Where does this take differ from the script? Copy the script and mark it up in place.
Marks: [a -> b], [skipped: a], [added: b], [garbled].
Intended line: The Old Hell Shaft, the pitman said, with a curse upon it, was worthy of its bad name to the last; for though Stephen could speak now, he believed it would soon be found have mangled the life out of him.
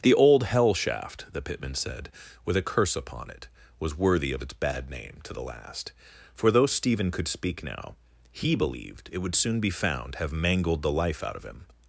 The Old Hell Shaft, the pitman said, with a curse upon it, was worthy of its bad name to the last; for though Stephen could speak now, he believed it would soon be found have mangled the life out of him.